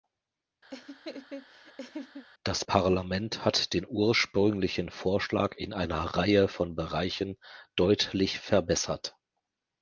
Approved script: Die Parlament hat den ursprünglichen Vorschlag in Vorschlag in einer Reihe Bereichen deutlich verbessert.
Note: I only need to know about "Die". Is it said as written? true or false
false